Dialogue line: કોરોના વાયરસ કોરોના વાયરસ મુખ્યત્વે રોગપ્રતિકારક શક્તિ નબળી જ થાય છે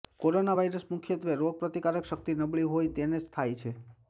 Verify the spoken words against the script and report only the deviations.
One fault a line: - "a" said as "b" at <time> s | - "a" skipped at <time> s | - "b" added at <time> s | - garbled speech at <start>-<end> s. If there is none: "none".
- "કોરોના વાયરસ" skipped at 0.9 s
- "હોય તેને" added at 2.7 s